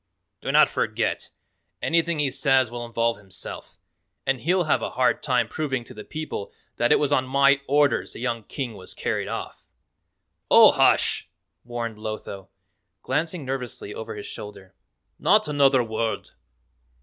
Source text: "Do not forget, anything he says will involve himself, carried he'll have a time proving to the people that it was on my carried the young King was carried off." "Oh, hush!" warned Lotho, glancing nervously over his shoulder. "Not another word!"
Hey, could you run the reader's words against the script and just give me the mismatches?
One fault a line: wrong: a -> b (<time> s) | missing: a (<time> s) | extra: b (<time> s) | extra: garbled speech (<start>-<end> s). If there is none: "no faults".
wrong: carried -> and (4.2 s)
extra: hard (4.9 s)
wrong: carried -> orders (7.7 s)